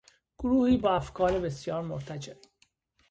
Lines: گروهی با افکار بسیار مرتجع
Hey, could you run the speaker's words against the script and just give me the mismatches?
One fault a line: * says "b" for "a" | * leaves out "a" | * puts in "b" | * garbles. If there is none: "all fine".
all fine